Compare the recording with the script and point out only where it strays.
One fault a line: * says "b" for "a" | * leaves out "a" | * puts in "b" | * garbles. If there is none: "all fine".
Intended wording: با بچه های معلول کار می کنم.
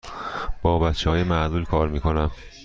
all fine